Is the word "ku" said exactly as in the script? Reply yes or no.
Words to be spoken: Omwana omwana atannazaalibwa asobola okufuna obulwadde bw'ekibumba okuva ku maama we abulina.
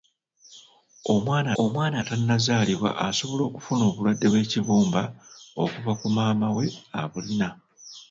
yes